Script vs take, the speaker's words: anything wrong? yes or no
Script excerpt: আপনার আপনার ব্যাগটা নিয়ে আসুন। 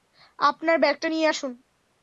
yes